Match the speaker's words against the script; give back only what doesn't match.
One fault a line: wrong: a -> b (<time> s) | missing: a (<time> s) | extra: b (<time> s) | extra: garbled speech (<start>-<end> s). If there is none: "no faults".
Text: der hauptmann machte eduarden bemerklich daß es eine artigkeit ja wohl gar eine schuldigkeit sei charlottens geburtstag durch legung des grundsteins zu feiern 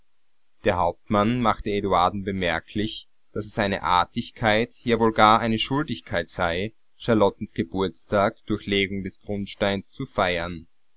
no faults